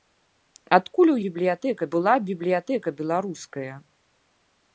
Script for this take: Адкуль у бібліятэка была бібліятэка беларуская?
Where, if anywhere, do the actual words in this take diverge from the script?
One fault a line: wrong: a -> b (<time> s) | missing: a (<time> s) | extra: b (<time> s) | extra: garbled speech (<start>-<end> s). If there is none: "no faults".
no faults